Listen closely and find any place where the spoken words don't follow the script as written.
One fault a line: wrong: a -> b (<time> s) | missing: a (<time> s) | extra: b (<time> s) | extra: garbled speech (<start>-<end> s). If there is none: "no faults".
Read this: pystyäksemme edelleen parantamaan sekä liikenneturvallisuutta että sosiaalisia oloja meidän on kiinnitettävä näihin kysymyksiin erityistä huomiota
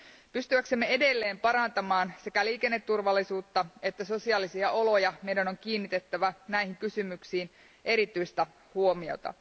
no faults